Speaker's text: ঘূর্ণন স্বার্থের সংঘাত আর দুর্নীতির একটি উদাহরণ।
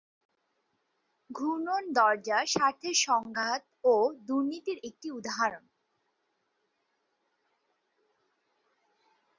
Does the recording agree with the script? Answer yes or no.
no